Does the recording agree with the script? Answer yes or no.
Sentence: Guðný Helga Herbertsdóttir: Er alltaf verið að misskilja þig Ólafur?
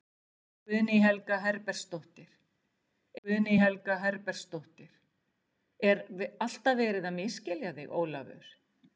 no